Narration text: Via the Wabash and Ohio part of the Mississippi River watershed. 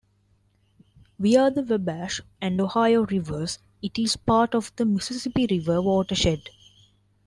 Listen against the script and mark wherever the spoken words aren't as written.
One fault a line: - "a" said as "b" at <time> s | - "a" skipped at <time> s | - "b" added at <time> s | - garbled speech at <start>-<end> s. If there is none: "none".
- "rivers it is" added at 3.1 s